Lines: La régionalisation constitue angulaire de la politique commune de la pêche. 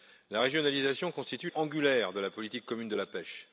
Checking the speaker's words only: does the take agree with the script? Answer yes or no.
yes